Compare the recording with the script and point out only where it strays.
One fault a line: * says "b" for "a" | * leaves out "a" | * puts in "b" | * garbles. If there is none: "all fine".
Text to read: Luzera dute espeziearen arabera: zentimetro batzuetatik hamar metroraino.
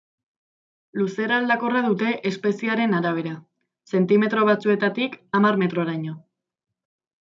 * puts in "aldakorra"